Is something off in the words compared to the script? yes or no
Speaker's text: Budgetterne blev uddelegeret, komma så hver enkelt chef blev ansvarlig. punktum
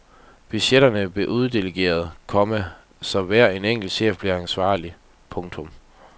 no